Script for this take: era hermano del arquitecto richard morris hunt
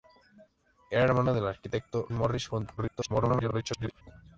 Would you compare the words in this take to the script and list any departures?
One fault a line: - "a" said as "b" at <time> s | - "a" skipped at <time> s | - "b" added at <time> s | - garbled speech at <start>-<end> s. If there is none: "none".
- "richard" skipped at 2.1 s
- garbled speech at 2.8-4.0 s